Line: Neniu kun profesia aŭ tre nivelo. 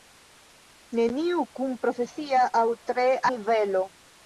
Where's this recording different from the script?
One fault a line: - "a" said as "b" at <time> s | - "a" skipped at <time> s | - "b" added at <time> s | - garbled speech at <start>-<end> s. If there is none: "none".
none